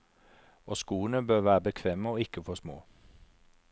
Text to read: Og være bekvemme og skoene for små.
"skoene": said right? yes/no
no